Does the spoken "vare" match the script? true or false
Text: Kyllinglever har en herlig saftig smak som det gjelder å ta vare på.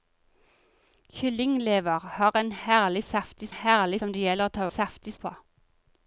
false